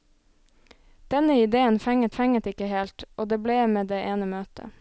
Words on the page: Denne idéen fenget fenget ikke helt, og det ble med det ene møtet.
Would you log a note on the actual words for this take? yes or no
no